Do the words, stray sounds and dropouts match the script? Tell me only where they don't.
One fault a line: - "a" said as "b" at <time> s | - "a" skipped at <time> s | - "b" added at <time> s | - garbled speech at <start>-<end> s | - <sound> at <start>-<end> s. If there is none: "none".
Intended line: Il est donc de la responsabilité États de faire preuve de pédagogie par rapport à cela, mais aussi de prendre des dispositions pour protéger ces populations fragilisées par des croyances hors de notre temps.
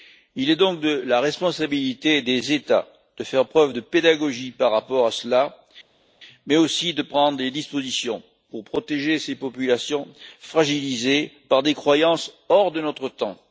- "des" added at 2.2 s